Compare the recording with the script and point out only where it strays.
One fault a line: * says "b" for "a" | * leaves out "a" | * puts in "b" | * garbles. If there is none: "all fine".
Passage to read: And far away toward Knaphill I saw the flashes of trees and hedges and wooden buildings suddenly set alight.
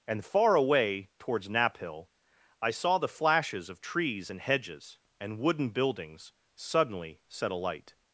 * says "towards" for "toward"